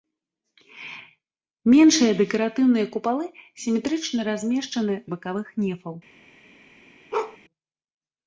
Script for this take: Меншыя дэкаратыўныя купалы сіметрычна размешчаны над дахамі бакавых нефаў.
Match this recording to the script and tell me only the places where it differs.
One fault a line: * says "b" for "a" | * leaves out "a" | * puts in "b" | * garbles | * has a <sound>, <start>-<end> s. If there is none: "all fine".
* leaves out "над дахамі"
* has a bark, 7.1-7.4 s